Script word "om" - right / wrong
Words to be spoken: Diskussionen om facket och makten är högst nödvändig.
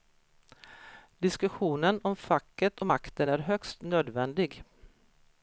right